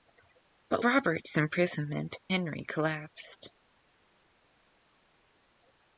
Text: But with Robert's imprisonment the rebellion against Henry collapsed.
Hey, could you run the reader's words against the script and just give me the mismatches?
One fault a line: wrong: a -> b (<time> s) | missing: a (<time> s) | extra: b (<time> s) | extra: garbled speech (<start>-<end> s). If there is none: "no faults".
missing: with (0.8 s)
missing: the rebellion against (2.2 s)